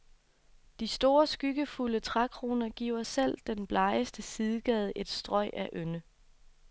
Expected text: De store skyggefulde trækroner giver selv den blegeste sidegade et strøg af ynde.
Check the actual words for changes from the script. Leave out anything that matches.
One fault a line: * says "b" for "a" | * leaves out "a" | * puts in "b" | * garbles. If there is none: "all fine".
all fine